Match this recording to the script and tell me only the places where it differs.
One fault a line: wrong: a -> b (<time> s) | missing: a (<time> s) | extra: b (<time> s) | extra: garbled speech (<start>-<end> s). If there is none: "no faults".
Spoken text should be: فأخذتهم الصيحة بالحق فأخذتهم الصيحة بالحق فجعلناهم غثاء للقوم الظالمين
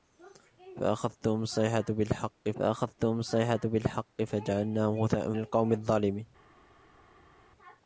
no faults